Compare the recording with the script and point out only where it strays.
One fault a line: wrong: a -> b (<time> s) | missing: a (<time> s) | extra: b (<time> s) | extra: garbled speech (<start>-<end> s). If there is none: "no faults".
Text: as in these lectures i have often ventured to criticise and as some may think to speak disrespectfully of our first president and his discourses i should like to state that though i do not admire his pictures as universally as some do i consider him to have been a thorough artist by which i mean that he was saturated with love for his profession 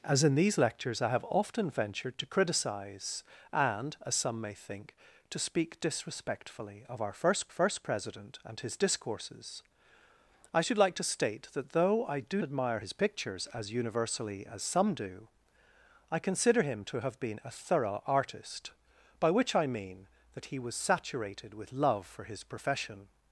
extra: first (7.5 s)
missing: not (12.4 s)